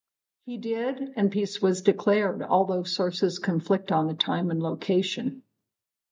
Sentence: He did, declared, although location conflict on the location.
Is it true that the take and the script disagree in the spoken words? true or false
true